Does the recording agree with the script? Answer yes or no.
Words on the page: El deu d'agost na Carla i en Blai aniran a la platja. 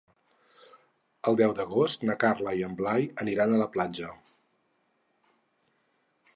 yes